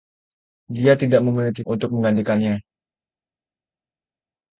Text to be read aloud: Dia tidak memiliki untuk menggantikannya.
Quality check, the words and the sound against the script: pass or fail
pass